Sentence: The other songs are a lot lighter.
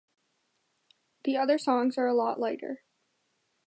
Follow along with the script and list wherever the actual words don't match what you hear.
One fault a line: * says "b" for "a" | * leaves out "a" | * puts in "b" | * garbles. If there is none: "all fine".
all fine